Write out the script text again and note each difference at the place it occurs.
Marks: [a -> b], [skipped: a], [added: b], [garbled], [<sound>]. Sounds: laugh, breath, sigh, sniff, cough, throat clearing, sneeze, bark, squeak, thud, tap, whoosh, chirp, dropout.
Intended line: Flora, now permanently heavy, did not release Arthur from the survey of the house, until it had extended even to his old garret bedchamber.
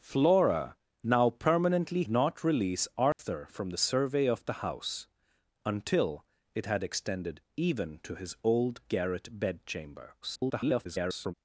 Flora, now permanently [skipped: heavy, did] not release Arthur [dropout] from the survey of the house, until it had extended even to his old garret bedchamber. [garbled]